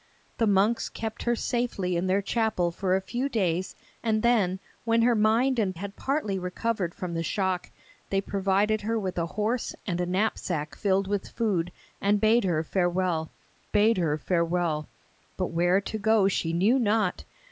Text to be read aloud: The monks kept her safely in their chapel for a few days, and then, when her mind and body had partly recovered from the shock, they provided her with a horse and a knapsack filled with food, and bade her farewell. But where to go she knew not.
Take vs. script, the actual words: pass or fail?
fail